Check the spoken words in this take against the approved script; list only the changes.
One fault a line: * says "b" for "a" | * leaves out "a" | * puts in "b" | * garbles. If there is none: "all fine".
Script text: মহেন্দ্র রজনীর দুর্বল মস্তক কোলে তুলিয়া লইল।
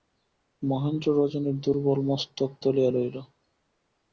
* leaves out "কোলে"